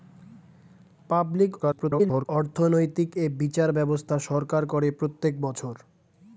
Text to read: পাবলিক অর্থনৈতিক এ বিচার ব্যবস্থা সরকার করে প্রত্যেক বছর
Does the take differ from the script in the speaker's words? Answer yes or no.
yes